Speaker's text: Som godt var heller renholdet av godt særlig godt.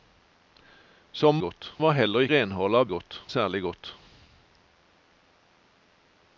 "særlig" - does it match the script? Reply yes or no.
yes